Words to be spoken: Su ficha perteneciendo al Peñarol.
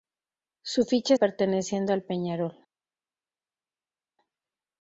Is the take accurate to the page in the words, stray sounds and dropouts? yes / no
yes